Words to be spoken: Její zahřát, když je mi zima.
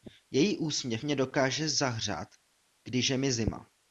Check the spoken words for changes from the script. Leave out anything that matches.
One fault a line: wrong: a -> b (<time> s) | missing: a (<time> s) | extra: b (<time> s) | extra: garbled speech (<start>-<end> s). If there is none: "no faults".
extra: úsměv mě dokáže (0.6 s)